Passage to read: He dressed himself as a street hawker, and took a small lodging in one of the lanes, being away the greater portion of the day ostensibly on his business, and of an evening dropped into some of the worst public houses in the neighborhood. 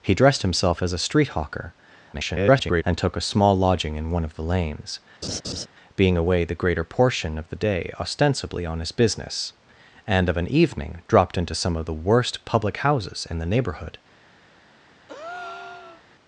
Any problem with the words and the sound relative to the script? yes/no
yes